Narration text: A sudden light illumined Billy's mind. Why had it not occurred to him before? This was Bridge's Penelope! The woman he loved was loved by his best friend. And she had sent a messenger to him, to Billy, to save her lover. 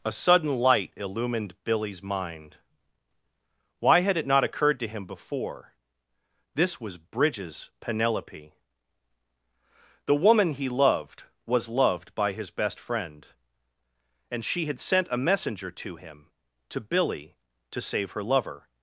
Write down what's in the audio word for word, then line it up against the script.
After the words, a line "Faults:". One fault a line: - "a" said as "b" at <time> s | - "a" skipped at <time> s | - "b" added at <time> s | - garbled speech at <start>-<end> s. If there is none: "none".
A sudden light illumined Billy's mind. Why had it not occurred to him before? This was Bridge's Penelope! The woman he loved was loved by his best friend. And she had sent a messenger to him, to Billy, to save her lover.
Faults:
none